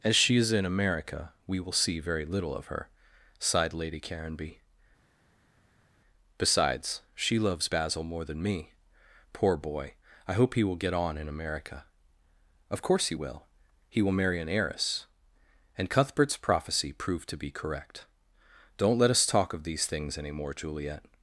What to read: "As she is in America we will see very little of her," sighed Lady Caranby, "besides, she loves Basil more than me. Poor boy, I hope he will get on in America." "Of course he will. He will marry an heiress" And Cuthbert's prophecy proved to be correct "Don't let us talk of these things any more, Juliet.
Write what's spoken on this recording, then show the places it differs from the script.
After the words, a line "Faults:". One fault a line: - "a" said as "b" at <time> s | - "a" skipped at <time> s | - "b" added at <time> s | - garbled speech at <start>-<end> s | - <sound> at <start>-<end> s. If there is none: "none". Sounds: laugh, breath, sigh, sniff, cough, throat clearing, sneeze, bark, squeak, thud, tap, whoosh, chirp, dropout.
"As she is in America we will see very little of her," sighed Lady Caranby, "besides, she loves Basil more than me. Poor boy, I hope he will get on in America." "Of course he will. He will marry an heiress" And Cuthbert's prophecy proved to be correct "Don't let us talk of these things any more, Juliet.
Faults:
none